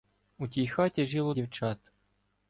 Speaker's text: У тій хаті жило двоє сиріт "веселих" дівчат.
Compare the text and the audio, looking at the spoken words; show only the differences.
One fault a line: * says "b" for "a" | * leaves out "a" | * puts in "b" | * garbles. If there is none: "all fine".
* leaves out "двоє сиріт веселих"